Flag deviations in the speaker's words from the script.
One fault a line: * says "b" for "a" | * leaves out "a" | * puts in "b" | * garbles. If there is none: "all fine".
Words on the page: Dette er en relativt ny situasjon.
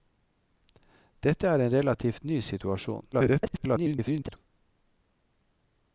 * garbles